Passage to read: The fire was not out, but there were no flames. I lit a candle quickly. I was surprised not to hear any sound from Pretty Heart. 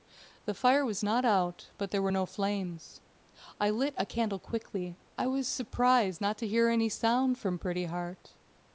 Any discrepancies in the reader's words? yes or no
no